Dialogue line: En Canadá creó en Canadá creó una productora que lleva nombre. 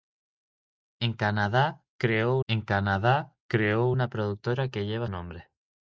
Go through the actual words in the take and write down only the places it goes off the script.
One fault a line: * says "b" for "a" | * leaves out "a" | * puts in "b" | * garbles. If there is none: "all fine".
all fine